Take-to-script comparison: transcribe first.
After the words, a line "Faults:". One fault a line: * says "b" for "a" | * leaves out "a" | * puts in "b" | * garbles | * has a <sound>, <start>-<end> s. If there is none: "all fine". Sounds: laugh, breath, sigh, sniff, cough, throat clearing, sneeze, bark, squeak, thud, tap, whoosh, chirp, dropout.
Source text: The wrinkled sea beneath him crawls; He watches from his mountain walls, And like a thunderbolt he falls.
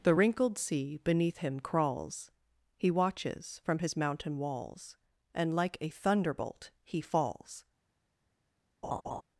The wrinkled sea beneath him crawls; He watches from his mountain walls, And like a thunderbolt he falls.
Faults:
* has a laugh, 8.8-9.2 s